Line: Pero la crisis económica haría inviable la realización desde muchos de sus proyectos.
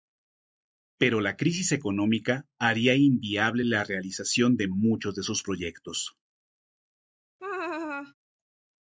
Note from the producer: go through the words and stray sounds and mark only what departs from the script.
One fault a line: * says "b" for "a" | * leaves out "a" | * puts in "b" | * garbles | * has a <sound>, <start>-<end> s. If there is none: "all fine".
* says "de" for "desde"
* has a laugh, 7.4-8.1 s